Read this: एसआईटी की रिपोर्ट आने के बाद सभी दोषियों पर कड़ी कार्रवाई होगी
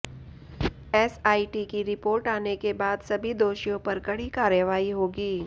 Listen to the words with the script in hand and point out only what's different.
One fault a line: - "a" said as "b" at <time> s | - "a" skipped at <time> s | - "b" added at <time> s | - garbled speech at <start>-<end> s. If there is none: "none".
none